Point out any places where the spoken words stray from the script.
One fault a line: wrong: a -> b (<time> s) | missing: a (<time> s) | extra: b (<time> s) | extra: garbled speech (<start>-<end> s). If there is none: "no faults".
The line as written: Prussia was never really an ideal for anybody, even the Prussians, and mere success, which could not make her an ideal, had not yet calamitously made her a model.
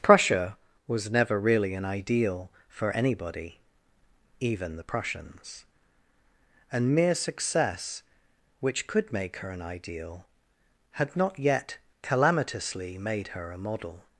missing: not (9.1 s)